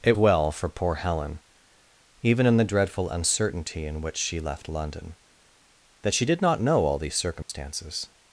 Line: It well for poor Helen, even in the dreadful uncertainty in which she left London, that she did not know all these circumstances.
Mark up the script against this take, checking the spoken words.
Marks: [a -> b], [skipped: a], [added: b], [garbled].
It well for poor Helen, even in the dreadful uncertainty in which she left London, that she did not know all these circumstances.